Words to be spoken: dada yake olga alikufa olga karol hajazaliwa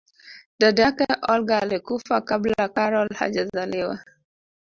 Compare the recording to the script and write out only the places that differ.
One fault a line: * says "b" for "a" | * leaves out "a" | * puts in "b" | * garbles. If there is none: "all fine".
* says "kabla" for "olga"